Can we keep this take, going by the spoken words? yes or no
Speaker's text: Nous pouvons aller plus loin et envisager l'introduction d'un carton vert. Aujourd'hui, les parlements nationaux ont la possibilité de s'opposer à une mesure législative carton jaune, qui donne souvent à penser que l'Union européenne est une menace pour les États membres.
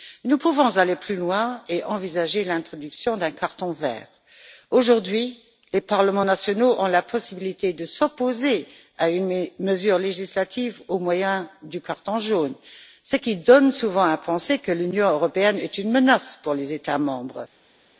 no